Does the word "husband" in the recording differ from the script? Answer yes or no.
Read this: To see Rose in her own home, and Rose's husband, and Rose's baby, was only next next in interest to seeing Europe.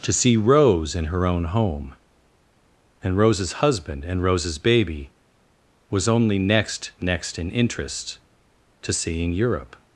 no